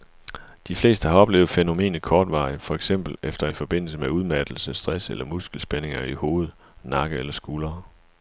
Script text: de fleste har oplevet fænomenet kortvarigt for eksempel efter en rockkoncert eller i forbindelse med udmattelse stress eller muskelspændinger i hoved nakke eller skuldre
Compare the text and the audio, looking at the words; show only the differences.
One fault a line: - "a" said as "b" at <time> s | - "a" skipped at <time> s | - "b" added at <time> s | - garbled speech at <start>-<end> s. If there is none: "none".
- "en rockkoncert eller" skipped at 3.5 s